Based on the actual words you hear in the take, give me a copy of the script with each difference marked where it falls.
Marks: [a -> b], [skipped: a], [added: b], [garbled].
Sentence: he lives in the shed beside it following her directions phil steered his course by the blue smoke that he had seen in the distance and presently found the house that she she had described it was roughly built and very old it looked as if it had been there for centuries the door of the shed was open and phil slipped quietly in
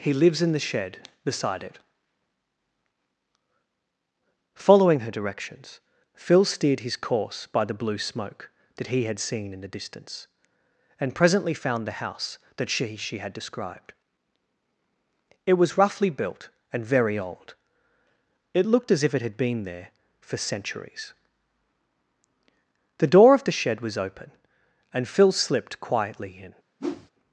he lives in the shed beside it following her directions phil steered his course by the blue smoke that he had seen in the distance and presently found the house that she she had described it was roughly built and very old it looked as if it had been there for centuries the door of the shed was open and phil slipped quietly in